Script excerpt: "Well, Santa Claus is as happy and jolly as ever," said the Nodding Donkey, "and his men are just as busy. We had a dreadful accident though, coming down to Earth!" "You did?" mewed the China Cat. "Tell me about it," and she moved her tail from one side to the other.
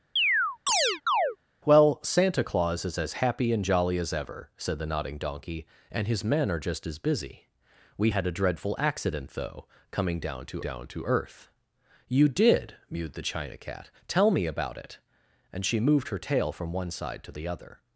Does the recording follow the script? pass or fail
fail